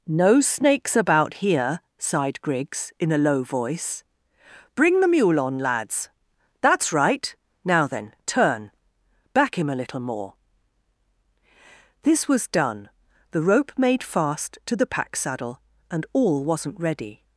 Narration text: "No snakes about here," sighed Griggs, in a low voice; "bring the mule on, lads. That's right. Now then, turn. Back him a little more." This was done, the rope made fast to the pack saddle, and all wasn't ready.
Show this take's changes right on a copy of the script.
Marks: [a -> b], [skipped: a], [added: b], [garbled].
"No snakes about here," sighed Griggs, in a low voice; "bring the mule on, lads. That's right. Now then, turn. Back him a little more." This was done, the rope made fast to the pack saddle, and all wasn't ready.